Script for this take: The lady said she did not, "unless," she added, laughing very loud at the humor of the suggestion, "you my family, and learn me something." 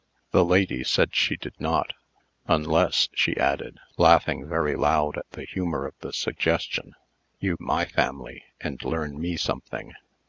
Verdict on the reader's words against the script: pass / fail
pass